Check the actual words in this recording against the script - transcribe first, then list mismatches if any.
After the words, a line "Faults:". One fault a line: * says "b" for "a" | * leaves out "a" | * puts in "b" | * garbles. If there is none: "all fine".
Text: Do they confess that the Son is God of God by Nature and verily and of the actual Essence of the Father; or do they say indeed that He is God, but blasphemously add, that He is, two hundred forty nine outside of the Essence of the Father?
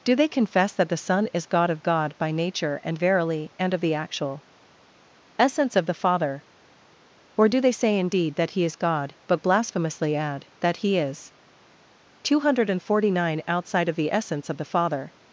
Do they confess that the Son is God of God by Nature and verily and of the actual Essence of the Father; or do they say indeed that He is God, but blasphemously add, that He is, two hundred forty nine outside of the Essence of the Father?
Faults:
all fine